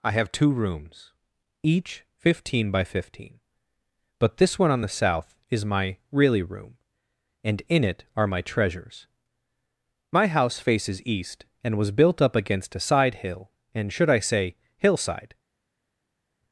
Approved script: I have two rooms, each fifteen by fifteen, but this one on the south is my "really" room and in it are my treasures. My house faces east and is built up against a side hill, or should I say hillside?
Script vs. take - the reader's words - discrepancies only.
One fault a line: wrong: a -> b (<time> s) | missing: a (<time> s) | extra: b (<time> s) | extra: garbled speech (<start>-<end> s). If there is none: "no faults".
wrong: is -> was (11.8 s)
wrong: or -> and (13.7 s)